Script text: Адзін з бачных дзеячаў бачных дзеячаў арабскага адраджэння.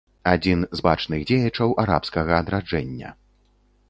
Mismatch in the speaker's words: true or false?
true